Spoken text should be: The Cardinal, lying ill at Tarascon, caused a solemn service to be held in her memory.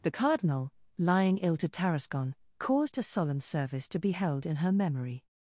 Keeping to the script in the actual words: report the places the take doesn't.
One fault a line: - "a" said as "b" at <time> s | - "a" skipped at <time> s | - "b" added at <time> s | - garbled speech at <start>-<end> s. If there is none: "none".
- "at" said as "to" at 1.6 s